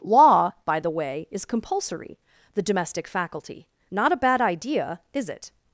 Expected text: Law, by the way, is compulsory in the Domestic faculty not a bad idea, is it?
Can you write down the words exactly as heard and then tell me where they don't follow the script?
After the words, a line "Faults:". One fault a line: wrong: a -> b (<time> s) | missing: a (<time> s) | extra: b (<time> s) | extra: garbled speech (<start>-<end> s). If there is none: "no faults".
Law, by the way, is compulsory the Domestic faculty not a bad idea, is it?
Faults:
missing: in (2.2 s)